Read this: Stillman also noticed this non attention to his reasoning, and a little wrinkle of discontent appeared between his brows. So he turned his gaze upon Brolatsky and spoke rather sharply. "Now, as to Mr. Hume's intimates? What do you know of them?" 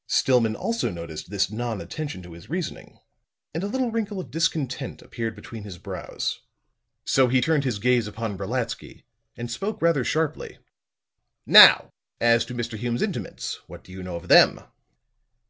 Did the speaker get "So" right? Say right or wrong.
right